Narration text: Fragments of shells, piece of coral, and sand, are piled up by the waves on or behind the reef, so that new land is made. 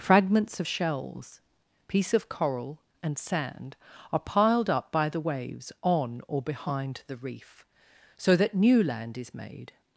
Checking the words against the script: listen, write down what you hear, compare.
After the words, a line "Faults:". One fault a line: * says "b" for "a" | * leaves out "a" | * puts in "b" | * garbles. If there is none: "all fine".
Fragments of shells, piece of coral, and sand, are piled up by the waves on or behind the reef, so that new land is made.
Faults:
all fine